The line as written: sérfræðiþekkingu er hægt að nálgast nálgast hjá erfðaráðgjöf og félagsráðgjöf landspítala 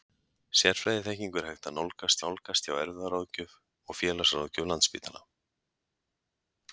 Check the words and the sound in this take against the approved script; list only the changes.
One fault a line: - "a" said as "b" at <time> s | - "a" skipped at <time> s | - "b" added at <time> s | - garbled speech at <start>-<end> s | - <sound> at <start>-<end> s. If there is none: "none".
none